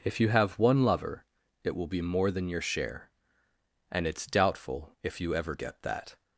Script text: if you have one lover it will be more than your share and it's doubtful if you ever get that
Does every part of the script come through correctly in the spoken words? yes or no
yes